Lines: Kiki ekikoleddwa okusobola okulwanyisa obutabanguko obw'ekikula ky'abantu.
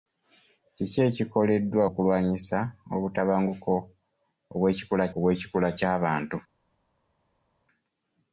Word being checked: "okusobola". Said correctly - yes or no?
no